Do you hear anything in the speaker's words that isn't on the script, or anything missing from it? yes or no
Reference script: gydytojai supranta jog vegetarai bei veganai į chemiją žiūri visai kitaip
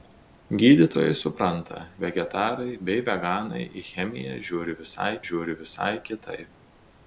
yes